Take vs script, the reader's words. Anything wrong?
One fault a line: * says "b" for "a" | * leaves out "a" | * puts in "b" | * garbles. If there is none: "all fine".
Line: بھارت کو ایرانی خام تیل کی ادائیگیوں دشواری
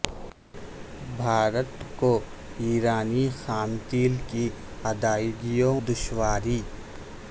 all fine